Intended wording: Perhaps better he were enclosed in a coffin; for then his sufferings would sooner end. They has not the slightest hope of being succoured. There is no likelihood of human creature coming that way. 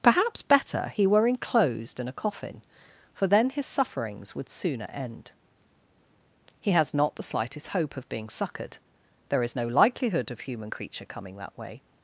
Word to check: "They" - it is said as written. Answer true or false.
false